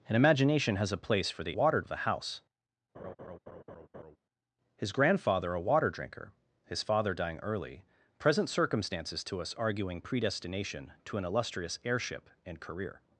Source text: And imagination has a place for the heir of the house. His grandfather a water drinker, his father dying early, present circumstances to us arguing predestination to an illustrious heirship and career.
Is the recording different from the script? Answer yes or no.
yes